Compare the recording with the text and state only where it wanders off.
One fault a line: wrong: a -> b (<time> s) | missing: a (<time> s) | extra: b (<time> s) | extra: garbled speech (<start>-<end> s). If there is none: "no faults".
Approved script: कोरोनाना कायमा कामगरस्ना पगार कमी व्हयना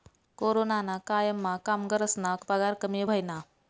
no faults